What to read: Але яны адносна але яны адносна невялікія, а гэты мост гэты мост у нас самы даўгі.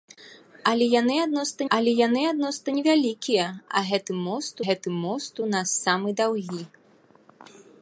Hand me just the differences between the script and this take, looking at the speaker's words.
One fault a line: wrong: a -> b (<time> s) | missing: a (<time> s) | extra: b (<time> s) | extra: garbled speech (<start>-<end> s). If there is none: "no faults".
no faults